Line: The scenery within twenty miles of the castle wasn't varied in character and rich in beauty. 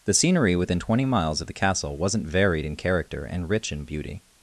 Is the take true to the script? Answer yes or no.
yes